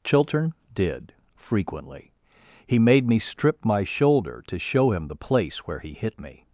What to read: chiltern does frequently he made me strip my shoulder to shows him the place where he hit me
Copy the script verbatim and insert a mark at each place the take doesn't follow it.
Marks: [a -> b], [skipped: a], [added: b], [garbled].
chiltern [does -> did] frequently he made me strip my shoulder to [shows -> show] him the place where he hit me